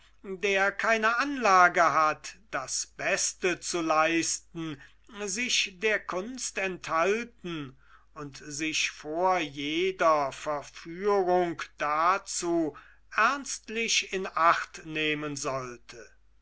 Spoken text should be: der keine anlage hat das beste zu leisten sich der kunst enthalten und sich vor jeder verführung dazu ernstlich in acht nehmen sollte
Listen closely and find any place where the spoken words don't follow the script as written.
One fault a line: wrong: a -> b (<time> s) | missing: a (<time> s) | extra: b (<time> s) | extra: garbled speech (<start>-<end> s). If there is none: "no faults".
no faults